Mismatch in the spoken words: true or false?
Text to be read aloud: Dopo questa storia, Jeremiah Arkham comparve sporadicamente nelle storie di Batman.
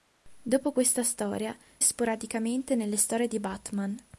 true